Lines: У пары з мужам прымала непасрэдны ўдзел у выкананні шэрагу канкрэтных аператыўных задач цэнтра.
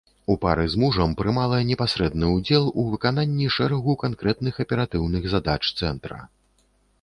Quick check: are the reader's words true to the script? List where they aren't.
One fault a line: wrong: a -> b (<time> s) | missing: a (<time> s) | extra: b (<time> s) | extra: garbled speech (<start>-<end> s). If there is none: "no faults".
no faults